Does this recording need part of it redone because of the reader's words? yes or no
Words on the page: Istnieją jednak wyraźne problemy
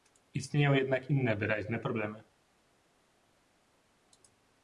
yes